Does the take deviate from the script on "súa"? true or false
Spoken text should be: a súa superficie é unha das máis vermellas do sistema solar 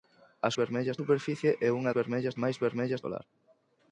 true